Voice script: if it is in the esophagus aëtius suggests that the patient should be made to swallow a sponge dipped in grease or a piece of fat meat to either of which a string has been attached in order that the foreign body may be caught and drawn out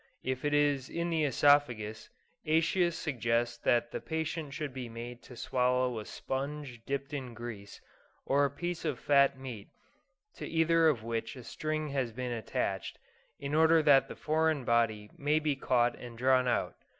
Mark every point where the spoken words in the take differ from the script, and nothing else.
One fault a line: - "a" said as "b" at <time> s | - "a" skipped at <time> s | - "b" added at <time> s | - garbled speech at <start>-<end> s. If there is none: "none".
none